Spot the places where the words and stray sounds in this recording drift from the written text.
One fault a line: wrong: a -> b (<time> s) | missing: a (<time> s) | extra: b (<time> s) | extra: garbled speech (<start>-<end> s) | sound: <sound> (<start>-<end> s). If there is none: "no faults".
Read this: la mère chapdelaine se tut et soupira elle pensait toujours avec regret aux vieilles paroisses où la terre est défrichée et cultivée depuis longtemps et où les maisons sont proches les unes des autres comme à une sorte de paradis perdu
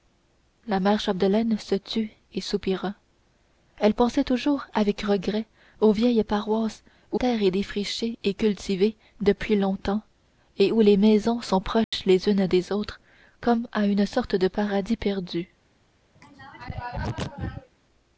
missing: la (7.2 s)
sound: dropout (11.8-11.9 s)
sound: throat clearing (16.1-17.7 s)